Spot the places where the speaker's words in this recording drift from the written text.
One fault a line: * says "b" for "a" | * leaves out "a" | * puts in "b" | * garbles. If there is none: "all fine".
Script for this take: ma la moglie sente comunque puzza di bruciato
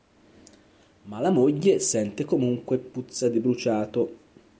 all fine